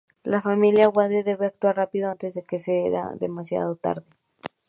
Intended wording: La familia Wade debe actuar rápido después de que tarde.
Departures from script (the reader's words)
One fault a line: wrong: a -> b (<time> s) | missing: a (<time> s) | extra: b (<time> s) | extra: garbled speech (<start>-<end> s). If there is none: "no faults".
wrong: después -> antes (2.1 s)
extra: sea demasiado (2.6 s)